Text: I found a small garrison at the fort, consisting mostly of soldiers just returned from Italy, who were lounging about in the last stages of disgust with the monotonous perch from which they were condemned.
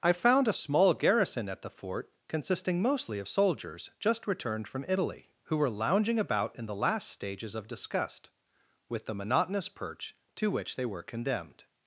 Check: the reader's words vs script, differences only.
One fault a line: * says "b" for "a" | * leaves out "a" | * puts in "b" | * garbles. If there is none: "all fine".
* says "to" for "from"